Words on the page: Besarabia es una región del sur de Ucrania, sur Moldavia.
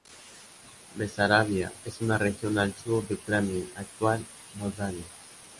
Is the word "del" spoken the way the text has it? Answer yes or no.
no